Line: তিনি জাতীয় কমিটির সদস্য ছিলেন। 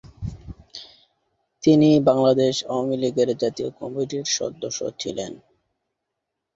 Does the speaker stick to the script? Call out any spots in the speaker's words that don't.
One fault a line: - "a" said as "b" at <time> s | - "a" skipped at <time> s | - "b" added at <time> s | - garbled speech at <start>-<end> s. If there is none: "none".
- "বাংলাদেশ আওয়ামী লীগের" added at 2.1 s